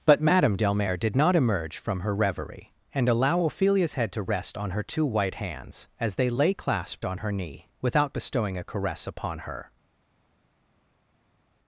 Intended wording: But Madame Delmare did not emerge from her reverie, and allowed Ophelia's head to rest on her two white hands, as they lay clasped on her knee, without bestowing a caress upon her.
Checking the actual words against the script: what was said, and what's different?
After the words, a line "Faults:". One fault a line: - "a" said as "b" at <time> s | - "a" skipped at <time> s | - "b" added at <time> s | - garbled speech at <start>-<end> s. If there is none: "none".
But Madame Delmare did not emerge from her reverie, and allow Ophelia's head to rest on her two white hands, as they lay clasped on her knee, without bestowing a caress upon her.
Faults:
- "allowed" said as "allow" at 3.1 s